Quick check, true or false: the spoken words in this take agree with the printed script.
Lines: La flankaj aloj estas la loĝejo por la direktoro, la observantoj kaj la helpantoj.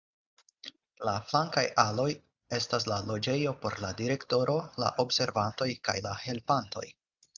true